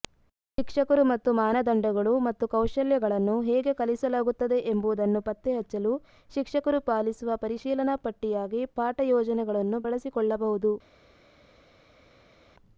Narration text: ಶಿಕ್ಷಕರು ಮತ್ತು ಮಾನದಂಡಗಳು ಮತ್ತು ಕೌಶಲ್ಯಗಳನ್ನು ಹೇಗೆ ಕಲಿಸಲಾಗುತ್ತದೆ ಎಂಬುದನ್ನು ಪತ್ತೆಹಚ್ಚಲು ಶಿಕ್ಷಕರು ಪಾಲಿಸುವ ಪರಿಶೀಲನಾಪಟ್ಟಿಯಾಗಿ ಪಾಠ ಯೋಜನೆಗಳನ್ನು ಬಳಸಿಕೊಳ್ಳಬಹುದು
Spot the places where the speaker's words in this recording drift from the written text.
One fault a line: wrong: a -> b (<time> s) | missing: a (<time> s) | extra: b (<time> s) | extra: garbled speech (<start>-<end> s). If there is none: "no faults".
no faults